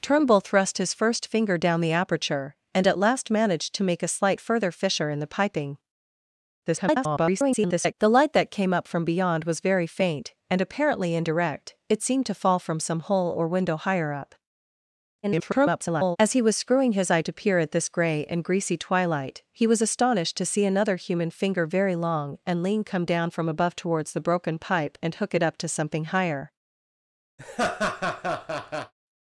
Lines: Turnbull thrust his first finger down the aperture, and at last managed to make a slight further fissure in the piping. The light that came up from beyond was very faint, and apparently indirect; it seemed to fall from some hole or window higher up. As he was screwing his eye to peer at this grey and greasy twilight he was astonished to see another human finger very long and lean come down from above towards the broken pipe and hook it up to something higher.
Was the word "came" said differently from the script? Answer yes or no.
no